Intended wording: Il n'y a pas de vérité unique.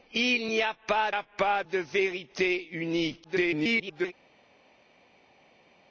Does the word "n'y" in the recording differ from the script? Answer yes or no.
no